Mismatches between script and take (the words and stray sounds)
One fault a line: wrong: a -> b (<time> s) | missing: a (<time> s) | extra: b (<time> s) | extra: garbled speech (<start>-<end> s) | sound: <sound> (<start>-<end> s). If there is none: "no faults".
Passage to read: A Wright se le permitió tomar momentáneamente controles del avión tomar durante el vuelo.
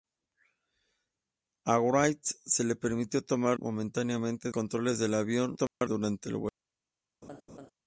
sound: dropout (5.7-5.8 s)
sound: laugh (7.2-7.7 s)